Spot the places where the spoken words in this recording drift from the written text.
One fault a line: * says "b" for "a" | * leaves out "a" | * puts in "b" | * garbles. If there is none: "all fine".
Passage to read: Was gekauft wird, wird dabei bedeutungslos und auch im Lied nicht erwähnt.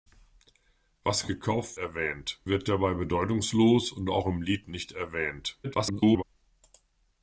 * says "erwähnt" for "wird"
* garbles